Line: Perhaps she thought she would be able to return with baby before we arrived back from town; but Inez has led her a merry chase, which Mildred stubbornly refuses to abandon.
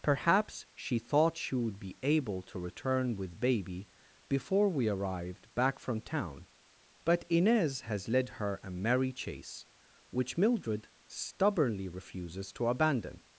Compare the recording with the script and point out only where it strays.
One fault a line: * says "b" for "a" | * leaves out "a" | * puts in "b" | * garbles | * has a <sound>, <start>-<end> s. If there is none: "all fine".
all fine